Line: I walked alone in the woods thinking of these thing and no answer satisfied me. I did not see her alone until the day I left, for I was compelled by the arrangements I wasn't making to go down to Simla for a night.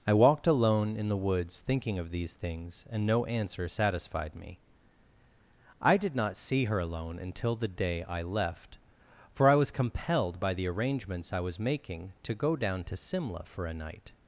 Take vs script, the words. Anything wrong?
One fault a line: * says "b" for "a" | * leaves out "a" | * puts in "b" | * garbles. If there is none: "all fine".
* says "things" for "thing"
* says "was" for "wasn't"